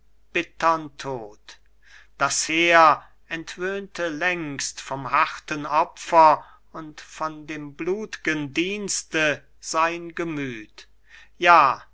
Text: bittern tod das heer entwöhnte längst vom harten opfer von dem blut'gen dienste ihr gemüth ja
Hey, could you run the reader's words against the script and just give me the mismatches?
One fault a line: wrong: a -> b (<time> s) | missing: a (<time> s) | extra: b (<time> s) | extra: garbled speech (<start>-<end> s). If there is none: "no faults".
extra: und (6.7 s)
wrong: ihr -> sein (9.6 s)